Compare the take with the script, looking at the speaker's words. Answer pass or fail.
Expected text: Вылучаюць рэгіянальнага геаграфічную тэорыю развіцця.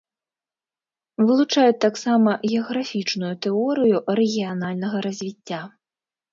fail